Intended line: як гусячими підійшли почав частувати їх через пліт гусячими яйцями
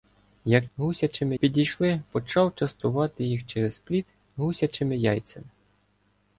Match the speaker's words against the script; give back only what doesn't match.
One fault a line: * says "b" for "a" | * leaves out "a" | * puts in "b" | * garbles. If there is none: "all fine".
all fine